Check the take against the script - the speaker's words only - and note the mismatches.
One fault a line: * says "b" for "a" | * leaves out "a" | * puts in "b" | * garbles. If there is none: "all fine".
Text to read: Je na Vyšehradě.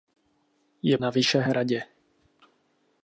all fine